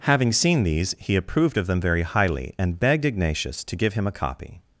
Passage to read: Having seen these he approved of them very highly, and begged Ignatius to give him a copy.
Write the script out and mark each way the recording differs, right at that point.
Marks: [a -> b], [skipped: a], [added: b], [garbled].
Having seen these he approved of them very highly, and begged Ignatius to give him a copy.